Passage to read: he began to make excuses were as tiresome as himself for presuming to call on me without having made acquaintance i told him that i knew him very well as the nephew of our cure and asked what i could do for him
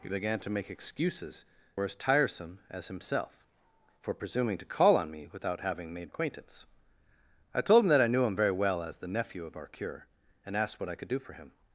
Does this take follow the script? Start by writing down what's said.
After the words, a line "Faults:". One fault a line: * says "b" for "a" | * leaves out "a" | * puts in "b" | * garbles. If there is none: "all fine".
he began to make excuses were as tiresome as himself for presuming to call on me without having made acquaintance i told him that i knew him very well as the nephew of our cure and asked what i could do for him
Faults:
all fine